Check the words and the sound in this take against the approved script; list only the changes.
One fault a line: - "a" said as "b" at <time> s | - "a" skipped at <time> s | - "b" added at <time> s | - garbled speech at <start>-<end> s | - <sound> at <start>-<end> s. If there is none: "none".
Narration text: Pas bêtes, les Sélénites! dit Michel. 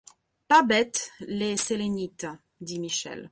none